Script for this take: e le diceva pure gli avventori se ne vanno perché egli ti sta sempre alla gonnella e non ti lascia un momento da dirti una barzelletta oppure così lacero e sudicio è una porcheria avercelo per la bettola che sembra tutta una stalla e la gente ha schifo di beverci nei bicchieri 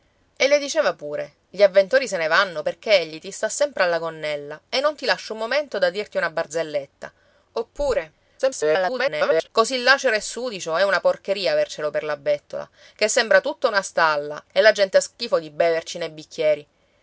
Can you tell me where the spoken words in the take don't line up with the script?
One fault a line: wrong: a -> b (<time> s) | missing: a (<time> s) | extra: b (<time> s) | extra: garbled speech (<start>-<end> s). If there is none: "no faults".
extra: garbled speech (8.4-9.5 s)